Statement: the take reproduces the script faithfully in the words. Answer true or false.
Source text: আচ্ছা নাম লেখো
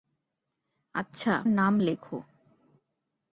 true